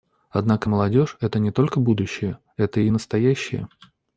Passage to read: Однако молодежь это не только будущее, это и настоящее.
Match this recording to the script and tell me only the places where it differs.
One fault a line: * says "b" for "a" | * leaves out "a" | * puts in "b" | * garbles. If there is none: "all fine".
all fine